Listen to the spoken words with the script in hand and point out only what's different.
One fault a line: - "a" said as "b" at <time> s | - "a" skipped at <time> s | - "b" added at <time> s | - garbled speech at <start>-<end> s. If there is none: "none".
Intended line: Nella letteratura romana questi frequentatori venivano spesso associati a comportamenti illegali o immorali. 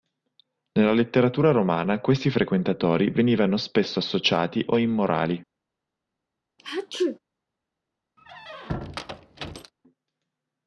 - "a comportamenti illegali" skipped at 4.6 s